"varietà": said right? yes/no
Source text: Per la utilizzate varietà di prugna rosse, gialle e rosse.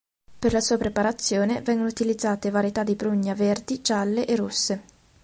yes